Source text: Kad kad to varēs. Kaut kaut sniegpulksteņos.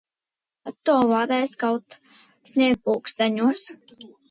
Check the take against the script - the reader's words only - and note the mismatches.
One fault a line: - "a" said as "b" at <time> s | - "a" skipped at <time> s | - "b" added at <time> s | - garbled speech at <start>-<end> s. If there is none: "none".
- "kad" skipped at 0.8 s
- "kaut" skipped at 2.0 s